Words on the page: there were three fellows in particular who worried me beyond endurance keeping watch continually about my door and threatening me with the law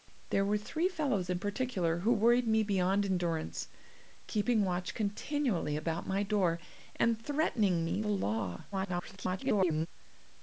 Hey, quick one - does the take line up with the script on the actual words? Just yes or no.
no